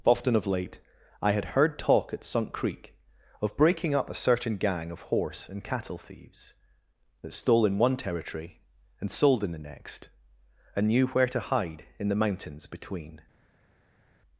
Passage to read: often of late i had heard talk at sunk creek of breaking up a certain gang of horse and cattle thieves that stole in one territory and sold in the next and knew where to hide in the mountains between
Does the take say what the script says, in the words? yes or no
yes